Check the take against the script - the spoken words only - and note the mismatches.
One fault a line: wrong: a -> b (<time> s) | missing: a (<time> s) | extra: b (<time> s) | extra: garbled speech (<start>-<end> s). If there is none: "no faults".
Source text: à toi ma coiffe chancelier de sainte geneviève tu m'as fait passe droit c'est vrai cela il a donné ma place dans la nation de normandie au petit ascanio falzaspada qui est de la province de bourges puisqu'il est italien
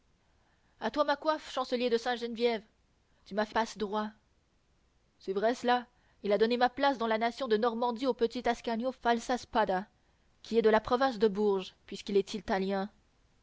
no faults